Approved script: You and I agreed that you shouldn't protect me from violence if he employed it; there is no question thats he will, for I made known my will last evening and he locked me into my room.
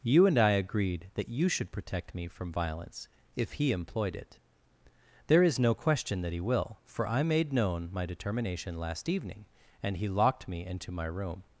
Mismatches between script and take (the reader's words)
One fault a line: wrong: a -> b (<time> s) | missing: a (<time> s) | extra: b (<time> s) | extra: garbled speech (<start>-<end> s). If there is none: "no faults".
wrong: shouldn't -> should (1.5 s)
wrong: thats -> that (6.2 s)
wrong: will -> determination (8.1 s)